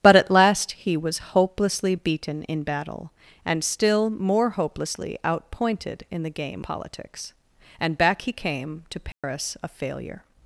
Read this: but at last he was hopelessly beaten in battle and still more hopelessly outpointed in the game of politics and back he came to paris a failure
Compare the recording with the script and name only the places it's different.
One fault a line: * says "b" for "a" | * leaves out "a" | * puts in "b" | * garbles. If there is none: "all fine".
* leaves out "of"